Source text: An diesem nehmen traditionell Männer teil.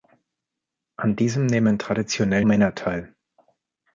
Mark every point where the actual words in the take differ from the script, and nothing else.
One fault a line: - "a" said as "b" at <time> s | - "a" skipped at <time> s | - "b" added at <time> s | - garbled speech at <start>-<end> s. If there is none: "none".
none